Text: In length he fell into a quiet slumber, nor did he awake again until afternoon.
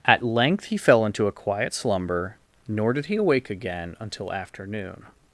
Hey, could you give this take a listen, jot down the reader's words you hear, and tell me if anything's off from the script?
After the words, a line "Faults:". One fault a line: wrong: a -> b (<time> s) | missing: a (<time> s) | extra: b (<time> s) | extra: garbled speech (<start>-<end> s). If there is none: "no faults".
At length he fell into a quiet slumber, nor did he awake again until afternoon.
Faults:
wrong: In -> At (0.1 s)